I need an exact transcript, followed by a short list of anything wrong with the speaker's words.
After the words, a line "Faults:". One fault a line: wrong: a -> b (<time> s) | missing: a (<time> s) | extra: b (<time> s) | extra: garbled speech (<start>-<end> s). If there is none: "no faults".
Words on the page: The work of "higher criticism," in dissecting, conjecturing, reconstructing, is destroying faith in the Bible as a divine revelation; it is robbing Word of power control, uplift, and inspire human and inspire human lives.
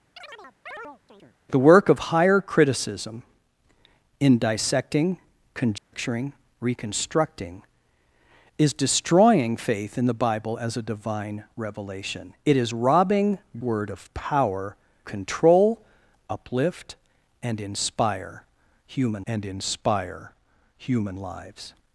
The work of "higher criticism," in dissecting, conjecturing, reconstructing, is destroying faith in the Bible as a divine revelation; it is robbing Word of power control, uplift, and inspire human and inspire human lives.
Faults:
no faults